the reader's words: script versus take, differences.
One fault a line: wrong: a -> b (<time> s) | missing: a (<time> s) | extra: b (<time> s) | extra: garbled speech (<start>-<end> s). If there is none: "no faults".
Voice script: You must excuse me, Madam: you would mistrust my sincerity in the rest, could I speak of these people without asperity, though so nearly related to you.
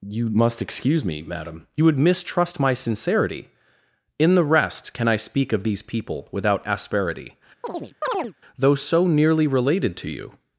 wrong: could -> can (4.9 s)